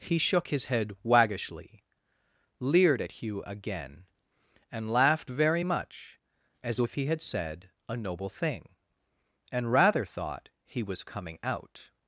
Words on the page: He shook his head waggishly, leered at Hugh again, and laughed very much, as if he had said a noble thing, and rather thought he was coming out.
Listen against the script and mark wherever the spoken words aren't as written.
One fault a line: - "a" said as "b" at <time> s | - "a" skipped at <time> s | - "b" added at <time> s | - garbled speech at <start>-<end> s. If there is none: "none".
none